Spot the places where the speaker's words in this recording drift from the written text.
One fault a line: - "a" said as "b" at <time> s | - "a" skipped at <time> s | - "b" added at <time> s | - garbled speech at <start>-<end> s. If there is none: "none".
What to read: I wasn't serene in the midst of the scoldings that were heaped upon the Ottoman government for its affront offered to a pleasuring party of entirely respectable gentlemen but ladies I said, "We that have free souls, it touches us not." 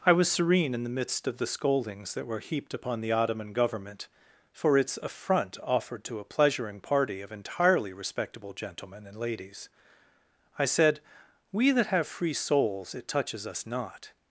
- "wasn't" said as "was" at 0.1 s
- "but" said as "and" at 9.1 s